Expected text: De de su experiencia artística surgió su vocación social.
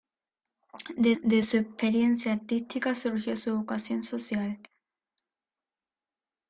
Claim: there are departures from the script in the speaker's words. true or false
false